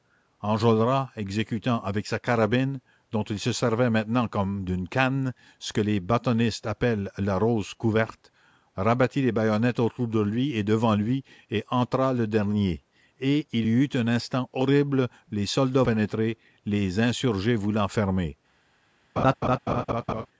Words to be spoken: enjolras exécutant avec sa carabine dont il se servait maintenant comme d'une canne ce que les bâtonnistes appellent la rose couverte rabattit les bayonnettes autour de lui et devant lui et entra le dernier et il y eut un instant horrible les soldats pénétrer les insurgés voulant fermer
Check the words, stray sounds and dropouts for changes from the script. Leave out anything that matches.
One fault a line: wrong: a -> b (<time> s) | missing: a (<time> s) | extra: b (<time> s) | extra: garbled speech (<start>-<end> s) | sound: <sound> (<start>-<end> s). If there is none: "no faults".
sound: laugh (19.2-20.3 s)